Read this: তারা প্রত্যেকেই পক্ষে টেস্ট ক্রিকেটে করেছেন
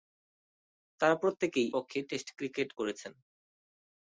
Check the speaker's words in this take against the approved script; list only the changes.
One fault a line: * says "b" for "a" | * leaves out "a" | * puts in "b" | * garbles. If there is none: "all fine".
all fine